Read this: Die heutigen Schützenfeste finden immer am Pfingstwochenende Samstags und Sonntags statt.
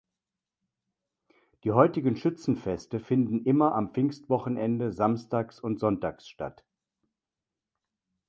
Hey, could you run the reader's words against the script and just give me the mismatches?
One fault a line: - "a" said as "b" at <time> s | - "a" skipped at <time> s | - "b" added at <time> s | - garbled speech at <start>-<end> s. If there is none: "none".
none